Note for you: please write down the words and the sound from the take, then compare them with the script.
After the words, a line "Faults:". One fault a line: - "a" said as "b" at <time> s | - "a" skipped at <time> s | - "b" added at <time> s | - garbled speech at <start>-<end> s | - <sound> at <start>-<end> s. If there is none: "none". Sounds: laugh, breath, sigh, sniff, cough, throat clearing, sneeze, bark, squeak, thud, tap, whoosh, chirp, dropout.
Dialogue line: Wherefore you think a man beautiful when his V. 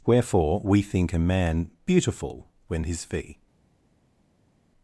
Wherefore we think a man beautiful when his V.
Faults:
- "you" said as "we" at 0.6 s